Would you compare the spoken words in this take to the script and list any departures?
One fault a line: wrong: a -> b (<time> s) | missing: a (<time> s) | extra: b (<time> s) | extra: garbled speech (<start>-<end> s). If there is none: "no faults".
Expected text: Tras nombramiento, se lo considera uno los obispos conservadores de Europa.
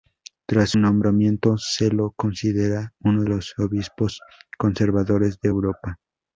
no faults